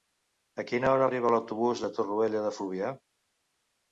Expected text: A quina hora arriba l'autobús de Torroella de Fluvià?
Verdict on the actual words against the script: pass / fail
pass